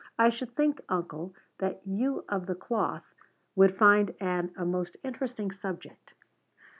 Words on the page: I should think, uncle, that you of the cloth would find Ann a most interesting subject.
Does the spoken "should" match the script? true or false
true